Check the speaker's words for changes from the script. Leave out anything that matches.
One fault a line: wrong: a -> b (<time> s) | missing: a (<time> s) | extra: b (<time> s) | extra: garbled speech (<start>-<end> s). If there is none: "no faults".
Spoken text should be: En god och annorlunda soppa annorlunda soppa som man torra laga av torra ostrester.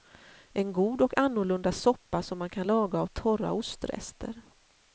missing: annorlunda soppa (2.2 s)
wrong: torra -> kan (2.5 s)